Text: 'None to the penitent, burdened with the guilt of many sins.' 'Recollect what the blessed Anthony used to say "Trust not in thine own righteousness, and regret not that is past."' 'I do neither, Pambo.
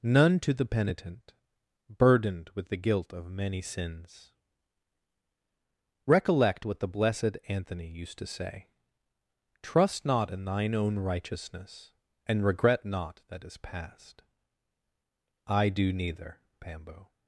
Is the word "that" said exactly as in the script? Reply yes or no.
yes